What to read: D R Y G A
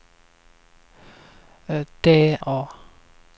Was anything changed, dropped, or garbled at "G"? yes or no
yes